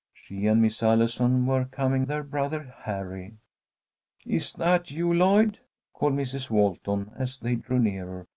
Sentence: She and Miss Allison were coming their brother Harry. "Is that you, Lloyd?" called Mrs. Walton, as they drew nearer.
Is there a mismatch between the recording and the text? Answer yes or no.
no